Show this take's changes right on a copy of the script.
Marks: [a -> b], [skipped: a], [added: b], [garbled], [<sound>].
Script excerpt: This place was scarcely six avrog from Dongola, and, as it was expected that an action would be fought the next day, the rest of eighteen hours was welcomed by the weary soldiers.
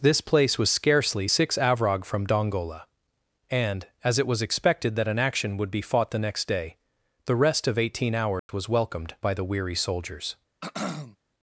This place was scarcely six avrog from Dongola, and, as it was expected that an action would be fought the next day, the rest of eighteen hours [dropout] was welcomed by the weary soldiers. [throat clearing]